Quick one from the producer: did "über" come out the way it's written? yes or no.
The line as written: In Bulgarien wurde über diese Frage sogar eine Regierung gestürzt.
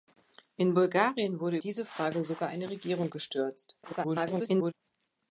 no